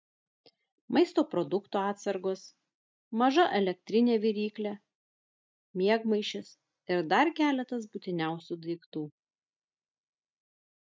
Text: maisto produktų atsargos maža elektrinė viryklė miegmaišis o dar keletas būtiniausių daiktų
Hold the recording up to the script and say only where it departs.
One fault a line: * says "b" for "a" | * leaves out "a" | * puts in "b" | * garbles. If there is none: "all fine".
* says "ir" for "o"